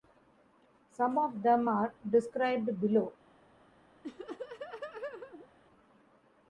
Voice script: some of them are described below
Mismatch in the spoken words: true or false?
false